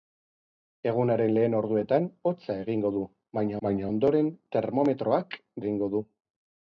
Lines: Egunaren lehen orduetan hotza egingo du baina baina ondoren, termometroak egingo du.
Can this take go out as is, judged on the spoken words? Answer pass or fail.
pass